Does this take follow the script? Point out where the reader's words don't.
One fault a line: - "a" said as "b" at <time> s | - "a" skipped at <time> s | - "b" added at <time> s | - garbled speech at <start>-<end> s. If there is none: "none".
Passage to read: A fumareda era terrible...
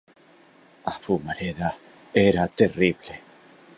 none